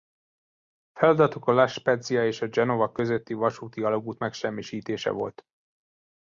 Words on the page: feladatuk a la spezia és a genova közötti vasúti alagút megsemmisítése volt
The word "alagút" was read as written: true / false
true